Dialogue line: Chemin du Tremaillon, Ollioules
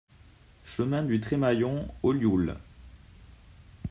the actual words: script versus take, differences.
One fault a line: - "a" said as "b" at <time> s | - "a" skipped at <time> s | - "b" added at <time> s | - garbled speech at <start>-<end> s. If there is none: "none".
none